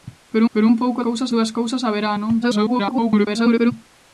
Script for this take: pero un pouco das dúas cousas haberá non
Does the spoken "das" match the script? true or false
false